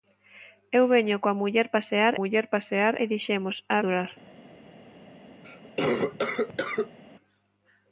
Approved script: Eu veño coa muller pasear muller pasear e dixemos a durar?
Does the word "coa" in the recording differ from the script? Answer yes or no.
no